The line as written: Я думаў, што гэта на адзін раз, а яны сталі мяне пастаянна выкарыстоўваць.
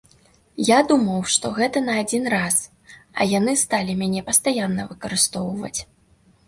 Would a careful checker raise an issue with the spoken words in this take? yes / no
no